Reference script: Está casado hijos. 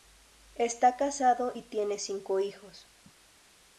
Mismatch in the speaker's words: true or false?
true